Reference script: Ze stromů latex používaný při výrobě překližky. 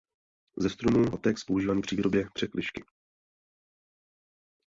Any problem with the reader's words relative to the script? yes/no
no